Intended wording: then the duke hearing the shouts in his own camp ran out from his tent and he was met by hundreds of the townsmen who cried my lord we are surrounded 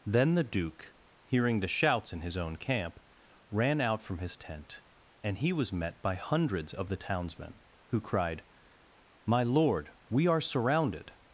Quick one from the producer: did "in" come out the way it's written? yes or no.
yes